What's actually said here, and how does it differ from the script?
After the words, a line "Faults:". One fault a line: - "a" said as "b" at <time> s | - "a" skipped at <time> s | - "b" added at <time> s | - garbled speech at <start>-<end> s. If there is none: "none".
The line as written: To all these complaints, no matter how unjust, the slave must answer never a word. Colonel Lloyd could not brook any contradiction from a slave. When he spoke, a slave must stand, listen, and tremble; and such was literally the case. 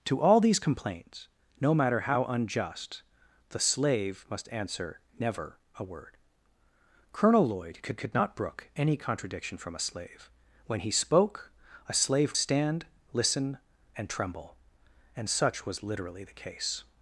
To all these complaints, no matter how unjust, the slave must answer never a word. Colonel Lloyd could could not brook any contradiction from a slave. When he spoke, a slave stand, listen, and tremble; and such was literally the case.
Faults:
- "could" added at 8.0 s
- "must" skipped at 12.4 s